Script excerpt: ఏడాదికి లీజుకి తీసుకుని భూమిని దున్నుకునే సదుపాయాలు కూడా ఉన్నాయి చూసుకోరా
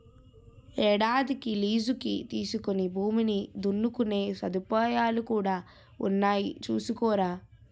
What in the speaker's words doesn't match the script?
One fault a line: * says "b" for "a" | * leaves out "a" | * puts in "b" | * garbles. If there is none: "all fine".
all fine